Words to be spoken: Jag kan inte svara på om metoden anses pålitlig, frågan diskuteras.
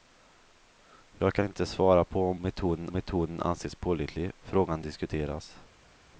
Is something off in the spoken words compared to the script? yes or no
yes